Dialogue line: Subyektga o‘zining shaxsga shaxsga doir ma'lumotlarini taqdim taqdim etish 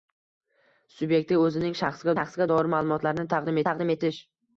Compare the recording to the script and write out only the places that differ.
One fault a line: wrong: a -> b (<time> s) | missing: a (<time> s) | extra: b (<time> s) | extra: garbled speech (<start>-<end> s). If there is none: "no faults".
no faults